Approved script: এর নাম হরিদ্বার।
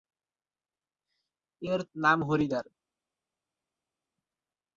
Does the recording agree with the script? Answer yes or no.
yes